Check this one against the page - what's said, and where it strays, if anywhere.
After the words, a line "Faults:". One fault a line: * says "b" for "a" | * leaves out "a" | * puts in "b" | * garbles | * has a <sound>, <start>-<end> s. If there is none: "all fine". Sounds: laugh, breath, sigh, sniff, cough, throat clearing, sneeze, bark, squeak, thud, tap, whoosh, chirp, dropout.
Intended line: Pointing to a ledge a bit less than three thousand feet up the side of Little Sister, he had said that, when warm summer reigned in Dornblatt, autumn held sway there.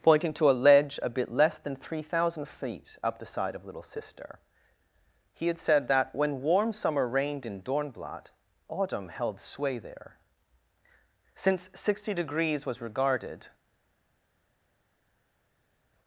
Pointing to a ledge a bit less than three thousand feet up the side of Little Sister, he had said that, when warm summer reigned in Dornblatt, autumn held sway there. Since sixty degrees was regarded
Faults:
* puts in "Since sixty degrees was regarded"